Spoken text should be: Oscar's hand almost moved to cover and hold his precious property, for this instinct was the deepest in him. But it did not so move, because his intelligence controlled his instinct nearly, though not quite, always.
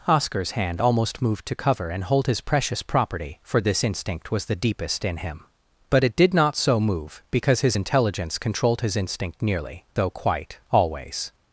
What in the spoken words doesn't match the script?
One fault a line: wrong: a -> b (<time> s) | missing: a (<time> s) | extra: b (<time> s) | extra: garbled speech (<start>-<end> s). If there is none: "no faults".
missing: not (10.1 s)